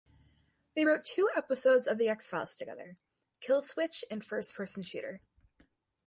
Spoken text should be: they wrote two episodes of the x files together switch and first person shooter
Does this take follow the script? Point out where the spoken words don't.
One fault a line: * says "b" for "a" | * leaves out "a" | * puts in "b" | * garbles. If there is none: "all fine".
* puts in "kill"